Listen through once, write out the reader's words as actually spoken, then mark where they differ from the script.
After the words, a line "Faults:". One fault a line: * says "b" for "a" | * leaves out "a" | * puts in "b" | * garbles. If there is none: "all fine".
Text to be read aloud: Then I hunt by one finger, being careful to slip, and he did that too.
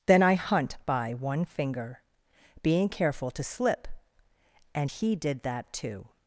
Then I hunt by one finger, being careful to slip, and he did that too.
Faults:
all fine